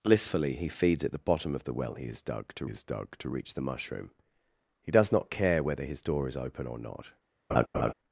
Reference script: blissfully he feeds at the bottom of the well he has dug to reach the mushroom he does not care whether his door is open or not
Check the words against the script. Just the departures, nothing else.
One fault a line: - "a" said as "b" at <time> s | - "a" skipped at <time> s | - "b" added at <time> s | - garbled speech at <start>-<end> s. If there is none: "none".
- "has dug to" added at 2.7 s